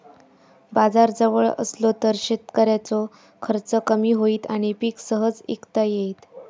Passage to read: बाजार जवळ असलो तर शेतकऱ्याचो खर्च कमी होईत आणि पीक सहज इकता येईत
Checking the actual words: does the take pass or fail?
pass